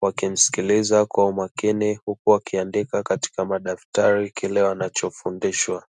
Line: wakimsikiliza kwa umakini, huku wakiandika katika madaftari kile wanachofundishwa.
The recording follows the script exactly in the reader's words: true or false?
true